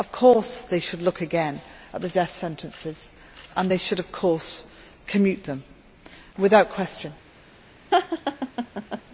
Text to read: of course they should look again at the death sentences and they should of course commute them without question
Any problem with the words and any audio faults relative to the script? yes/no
yes